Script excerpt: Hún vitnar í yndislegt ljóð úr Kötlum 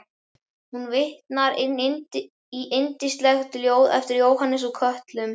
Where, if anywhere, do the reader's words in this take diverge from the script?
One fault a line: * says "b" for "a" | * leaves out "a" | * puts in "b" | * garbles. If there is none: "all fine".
* puts in "eftir Jóhannes"